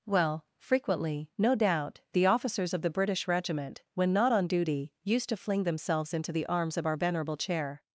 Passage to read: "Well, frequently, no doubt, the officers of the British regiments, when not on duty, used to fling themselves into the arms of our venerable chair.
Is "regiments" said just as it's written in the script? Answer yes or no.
no